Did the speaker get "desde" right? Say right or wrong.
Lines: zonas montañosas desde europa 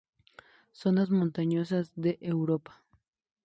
wrong